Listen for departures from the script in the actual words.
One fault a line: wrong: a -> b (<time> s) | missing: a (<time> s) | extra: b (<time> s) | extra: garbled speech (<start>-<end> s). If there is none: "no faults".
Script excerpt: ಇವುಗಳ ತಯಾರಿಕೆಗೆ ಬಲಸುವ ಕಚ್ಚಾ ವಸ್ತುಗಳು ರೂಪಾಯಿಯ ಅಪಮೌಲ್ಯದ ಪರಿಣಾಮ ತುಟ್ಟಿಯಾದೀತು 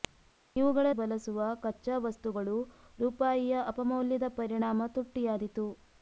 missing: ತಯಾರಿಕೆಗೆ (0.9 s)